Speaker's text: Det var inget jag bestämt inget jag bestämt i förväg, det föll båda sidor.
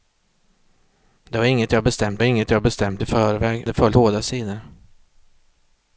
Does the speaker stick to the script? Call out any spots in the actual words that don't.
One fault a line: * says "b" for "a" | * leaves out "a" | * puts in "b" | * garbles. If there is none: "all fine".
all fine